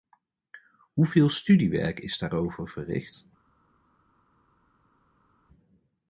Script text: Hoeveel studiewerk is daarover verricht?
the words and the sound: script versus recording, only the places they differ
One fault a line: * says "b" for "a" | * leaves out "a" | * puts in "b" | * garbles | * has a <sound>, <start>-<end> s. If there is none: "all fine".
all fine